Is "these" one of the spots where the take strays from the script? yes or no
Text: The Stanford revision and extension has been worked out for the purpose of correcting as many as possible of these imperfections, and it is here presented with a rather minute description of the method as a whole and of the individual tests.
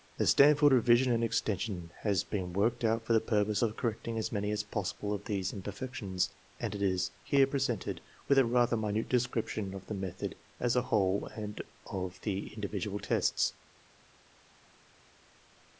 no